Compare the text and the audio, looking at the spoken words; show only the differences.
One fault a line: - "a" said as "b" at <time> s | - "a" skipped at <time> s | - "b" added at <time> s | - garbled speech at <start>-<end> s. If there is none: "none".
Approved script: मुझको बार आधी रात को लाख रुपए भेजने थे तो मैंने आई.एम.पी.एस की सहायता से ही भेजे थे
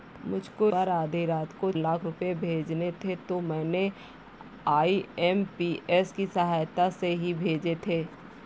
none